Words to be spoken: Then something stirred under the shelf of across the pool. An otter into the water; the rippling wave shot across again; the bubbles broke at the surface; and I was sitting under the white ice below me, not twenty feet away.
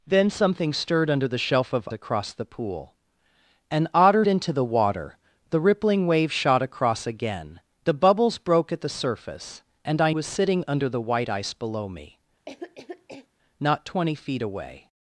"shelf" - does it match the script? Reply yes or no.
yes